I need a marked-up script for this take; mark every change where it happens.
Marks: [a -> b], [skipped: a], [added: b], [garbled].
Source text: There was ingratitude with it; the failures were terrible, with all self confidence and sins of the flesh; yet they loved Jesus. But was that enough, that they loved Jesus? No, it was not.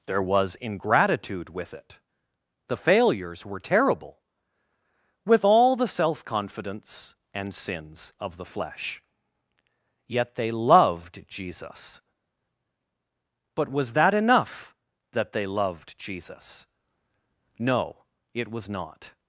There was ingratitude with it; the failures were terrible, with all [added: the] self confidence and sins of the flesh; yet they loved Jesus. But was that enough, that they loved Jesus? No, it was not.